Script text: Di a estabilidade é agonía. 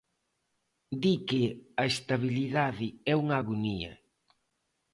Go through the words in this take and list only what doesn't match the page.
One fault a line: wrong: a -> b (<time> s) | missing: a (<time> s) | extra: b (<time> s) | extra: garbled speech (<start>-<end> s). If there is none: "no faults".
extra: que (1.3 s)
extra: unha (3.2 s)